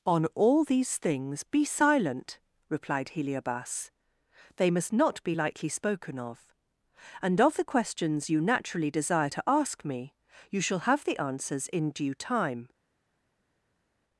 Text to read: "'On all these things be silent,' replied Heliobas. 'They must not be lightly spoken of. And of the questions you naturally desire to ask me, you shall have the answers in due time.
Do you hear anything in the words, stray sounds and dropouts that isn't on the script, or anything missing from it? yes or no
no